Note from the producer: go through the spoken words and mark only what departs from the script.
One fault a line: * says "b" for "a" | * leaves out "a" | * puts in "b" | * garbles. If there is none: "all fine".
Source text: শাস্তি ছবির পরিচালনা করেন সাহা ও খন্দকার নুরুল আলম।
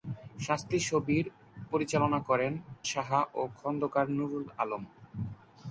all fine